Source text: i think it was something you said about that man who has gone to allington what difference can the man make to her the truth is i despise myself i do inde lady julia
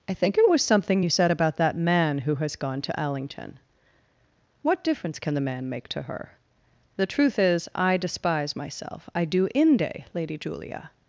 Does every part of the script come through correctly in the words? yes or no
yes